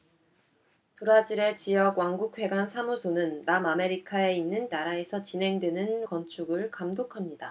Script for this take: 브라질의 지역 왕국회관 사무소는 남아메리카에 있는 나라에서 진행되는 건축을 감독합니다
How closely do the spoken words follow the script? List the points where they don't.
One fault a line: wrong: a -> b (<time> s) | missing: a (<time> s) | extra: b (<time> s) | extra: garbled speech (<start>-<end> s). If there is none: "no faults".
no faults